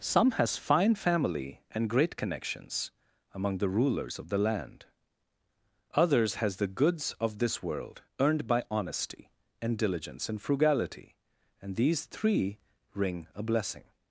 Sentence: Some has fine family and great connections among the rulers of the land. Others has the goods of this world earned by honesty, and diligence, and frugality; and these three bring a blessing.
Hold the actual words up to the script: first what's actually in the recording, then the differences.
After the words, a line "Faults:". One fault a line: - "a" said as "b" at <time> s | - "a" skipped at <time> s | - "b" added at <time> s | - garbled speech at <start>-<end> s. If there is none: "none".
Some has fine family and great connections among the rulers of the land. Others has the goods of this world earned by honesty, and diligence, and frugality; and these three ring a blessing.
Faults:
- "bring" said as "ring" at 12.9 s